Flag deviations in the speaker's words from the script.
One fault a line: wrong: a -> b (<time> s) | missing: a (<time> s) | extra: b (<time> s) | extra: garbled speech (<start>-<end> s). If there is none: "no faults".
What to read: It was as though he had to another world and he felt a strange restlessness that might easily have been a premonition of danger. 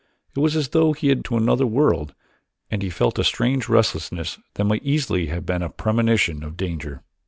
no faults